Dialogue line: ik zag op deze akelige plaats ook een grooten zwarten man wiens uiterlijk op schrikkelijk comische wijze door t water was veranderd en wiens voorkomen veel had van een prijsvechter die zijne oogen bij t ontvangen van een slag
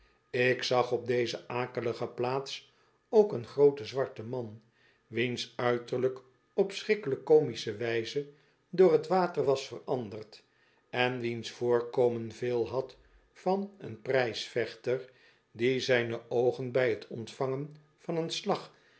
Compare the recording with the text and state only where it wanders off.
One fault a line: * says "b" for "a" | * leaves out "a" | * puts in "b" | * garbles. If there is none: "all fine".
all fine